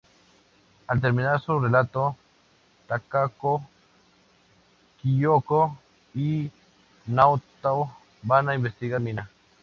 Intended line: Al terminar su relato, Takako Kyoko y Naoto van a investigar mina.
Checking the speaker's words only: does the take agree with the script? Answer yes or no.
yes